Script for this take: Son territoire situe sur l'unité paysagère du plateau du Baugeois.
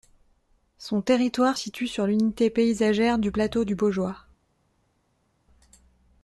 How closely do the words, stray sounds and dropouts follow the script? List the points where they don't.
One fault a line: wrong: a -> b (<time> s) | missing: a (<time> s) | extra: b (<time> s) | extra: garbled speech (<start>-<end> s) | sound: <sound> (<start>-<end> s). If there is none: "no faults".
no faults